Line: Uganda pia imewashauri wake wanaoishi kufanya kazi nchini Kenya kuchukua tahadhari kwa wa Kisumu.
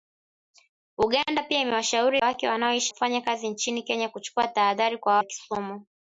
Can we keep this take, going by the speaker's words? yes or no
yes